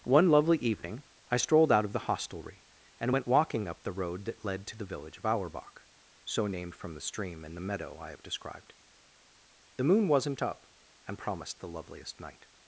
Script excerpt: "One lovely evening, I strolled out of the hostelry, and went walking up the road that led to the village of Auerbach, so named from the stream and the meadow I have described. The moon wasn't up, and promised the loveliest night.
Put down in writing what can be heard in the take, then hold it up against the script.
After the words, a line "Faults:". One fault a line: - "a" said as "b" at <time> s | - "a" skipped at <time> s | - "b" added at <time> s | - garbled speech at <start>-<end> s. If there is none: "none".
"One lovely evening, I strolled out of the hostelry, and went walking up the road that led to the village of Auerbach, so named from the stream and the meadow I have described. The moon wasn't up, and promised the loveliest night.
Faults:
none